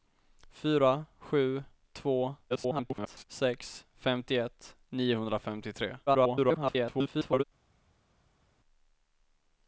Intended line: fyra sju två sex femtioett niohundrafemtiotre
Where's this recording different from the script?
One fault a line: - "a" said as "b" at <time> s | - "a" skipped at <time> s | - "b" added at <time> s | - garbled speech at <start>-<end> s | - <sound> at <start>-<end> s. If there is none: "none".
- garbled speech at 2.5-3.2 s
- garbled speech at 6.1-7.4 s